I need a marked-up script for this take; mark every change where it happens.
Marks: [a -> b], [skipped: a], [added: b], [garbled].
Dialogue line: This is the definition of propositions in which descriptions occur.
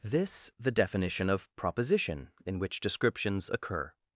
This [skipped: is] the definition of [propositions -> proposition] in which descriptions occur.